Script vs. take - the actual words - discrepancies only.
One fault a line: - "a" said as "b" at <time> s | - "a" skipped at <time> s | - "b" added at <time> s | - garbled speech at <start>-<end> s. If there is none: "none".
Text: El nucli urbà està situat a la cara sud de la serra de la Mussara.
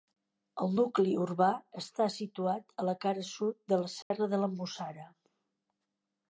none